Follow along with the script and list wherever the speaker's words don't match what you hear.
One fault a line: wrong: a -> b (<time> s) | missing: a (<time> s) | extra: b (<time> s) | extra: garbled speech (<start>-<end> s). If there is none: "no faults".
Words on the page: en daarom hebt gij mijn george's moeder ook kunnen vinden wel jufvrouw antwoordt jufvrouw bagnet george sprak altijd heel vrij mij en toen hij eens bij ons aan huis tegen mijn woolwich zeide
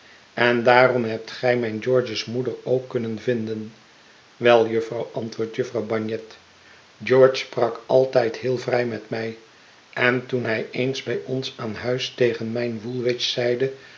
extra: met (8.8 s)